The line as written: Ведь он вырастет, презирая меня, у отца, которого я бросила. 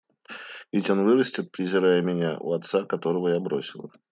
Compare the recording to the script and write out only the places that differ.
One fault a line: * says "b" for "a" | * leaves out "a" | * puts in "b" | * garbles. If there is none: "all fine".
all fine